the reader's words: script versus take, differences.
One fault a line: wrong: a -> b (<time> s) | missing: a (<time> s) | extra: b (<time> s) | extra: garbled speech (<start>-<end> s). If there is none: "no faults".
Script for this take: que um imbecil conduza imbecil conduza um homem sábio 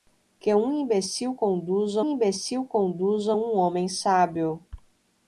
no faults